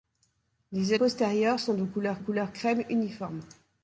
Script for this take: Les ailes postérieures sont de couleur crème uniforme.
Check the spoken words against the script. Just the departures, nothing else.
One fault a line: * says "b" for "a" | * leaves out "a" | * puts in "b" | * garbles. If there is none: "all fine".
* leaves out "ailes"
* puts in "couleur"